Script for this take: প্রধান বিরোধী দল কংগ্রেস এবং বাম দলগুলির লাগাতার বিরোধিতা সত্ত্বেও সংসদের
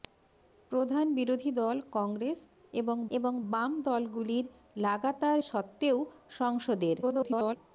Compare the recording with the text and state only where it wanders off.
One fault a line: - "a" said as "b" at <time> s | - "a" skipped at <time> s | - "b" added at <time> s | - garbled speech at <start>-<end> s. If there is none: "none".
- "এবং" added at 3.1 s
- "বিরোধিতা" skipped at 5.4 s
- garbled speech at 7.0-7.6 s